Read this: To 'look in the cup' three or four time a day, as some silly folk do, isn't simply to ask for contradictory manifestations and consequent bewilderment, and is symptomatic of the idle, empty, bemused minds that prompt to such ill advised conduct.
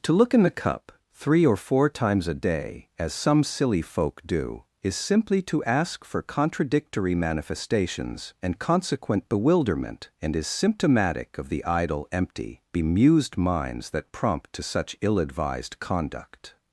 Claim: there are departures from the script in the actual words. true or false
true